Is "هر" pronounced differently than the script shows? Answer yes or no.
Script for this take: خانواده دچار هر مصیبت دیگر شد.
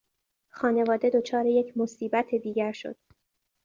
yes